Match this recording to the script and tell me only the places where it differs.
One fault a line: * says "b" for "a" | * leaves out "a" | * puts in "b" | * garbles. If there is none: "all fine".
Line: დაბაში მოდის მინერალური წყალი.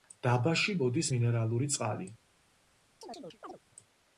all fine